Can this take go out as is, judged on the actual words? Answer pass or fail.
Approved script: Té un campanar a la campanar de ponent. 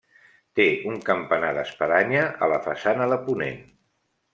fail